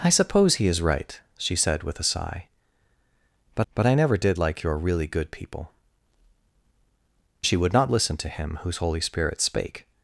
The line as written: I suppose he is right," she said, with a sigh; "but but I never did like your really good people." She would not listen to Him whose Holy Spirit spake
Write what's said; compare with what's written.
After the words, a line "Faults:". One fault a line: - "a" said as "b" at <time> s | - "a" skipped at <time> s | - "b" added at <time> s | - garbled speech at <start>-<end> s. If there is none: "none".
I suppose he is right," she said, with a sigh; "but but I never did like your really good people." She would not listen to Him whose Holy Spirit spake
Faults:
none